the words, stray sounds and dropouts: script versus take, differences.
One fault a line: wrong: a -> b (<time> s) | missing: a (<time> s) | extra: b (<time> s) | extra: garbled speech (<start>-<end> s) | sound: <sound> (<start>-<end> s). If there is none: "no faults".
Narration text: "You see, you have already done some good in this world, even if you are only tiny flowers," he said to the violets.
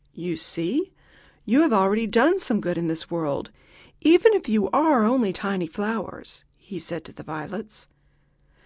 no faults